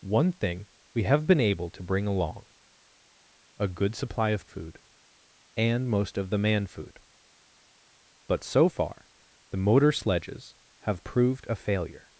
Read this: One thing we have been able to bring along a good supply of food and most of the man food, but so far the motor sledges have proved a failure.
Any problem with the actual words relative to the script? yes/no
no